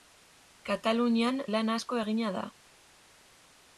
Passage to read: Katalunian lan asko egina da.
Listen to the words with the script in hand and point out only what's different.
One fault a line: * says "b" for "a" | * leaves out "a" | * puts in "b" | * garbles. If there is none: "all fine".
all fine